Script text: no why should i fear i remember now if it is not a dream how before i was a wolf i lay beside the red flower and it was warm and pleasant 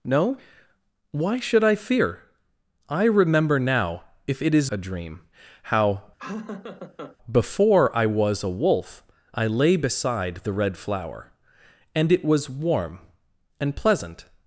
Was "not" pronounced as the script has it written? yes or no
no